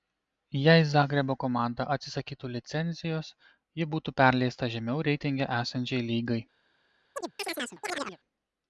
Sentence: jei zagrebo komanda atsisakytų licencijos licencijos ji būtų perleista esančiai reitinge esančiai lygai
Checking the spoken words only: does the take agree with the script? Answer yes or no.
no